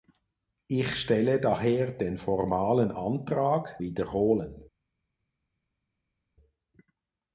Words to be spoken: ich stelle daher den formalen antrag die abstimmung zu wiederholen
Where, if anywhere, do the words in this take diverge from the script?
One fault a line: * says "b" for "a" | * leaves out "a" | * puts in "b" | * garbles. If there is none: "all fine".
* leaves out "die abstimmung zu"